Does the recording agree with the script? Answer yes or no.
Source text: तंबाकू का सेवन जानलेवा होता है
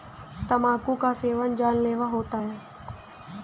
yes